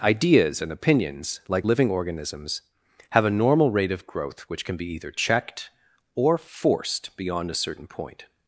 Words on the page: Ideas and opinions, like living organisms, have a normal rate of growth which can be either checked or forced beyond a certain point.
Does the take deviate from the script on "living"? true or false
false